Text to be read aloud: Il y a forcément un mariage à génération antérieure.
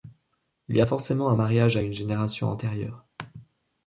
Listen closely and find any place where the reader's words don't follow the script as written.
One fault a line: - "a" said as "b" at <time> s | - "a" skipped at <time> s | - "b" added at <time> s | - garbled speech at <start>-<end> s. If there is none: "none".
- "une" added at 1.8 s